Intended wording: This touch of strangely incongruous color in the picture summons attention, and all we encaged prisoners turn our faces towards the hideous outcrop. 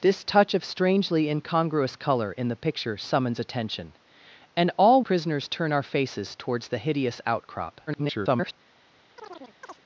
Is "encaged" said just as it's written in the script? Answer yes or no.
no